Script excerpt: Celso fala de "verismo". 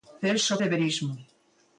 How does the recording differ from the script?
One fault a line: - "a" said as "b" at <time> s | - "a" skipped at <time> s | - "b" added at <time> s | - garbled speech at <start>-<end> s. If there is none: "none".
- "fala" skipped at 0.6 s